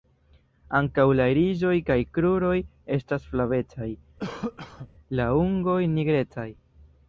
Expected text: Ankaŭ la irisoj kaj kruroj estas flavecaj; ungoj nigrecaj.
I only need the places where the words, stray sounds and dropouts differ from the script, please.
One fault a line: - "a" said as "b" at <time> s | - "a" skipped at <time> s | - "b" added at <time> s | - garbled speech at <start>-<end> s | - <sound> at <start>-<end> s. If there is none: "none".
- cough at 4.2-4.9 s
- "la" added at 5.2 s